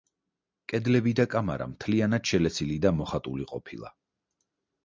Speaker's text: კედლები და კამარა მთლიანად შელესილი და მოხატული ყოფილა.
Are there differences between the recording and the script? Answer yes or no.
no